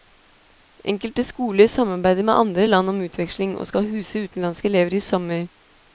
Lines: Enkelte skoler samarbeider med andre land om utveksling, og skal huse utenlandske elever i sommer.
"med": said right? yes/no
yes